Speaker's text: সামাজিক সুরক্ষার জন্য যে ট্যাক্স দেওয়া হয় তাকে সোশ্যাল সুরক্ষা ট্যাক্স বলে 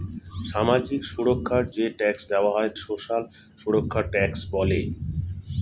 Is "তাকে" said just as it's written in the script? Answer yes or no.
no